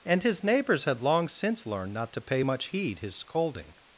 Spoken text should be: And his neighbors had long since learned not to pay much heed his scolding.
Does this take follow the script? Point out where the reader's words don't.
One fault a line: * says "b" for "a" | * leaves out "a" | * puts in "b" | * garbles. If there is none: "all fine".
all fine